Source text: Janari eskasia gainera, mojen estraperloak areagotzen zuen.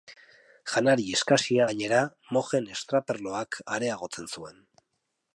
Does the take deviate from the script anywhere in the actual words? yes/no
no